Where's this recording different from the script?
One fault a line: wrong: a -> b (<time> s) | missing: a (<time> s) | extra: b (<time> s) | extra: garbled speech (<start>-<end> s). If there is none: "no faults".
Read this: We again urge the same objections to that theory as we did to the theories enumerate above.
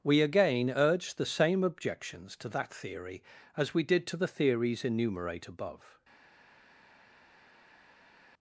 no faults